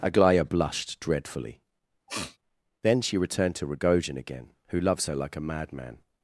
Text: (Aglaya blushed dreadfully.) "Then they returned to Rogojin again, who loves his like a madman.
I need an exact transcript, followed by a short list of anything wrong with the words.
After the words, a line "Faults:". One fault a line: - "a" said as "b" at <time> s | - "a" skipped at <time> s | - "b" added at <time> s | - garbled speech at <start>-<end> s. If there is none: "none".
(Aglaya blushed dreadfully.) "Then she returned to Rogojin again, who loves her like a madman.
Faults:
- "they" said as "she" at 3.0 s
- "his" said as "her" at 5.0 s